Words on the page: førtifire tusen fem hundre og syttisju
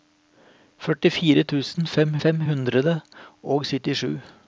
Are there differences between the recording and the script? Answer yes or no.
yes